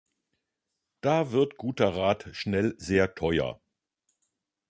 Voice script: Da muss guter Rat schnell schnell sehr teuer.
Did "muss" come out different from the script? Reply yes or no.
yes